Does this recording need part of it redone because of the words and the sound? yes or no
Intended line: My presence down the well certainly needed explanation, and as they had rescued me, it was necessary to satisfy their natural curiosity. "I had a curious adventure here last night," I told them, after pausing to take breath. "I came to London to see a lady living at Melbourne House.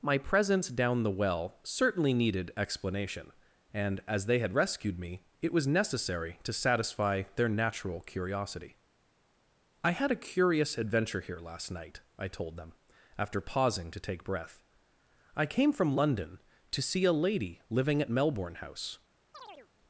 yes